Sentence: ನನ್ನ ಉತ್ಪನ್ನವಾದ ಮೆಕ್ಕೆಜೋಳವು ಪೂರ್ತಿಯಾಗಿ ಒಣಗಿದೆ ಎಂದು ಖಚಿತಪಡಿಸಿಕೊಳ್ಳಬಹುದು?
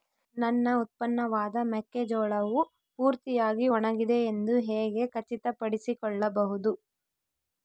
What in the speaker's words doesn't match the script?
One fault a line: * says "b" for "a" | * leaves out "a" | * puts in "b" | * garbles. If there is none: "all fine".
* puts in "ಹೇಗೆ"